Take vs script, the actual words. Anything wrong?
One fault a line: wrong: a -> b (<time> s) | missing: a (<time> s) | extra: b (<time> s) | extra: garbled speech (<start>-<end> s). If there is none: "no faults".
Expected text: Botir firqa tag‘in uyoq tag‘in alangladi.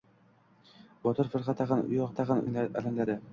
no faults